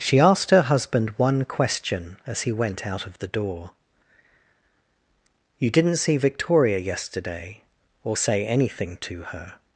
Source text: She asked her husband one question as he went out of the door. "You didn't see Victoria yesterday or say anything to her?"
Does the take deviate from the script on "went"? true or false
false